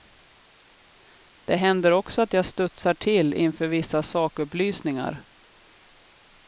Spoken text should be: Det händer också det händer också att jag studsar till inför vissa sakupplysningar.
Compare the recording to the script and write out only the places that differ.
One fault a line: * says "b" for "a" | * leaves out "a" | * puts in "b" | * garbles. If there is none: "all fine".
* leaves out "det händer också"